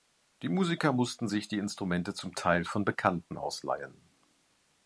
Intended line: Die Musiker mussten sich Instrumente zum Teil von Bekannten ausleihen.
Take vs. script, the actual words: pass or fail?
fail